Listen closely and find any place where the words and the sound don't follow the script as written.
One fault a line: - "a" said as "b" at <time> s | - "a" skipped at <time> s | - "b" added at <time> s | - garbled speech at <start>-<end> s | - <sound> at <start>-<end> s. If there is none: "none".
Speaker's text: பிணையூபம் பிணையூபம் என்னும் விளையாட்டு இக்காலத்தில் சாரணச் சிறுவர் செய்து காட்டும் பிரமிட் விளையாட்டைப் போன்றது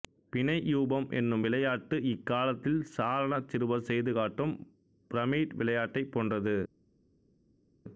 - "பிணையூபம்" skipped at 1.1 s